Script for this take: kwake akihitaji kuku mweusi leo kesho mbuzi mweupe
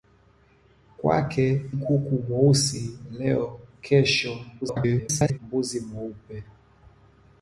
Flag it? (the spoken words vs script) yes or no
yes